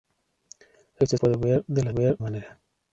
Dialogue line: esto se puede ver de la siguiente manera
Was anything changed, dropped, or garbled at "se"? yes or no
yes